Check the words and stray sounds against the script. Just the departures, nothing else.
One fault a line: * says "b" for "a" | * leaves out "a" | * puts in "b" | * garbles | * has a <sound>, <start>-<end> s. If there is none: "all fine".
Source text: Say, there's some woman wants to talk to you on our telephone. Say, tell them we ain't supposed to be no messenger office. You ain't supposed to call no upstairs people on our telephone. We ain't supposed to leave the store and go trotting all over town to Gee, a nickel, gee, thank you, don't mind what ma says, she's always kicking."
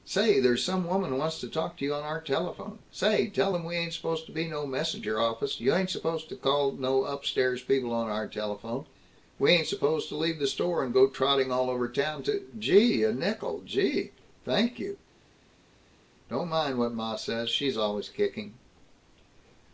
all fine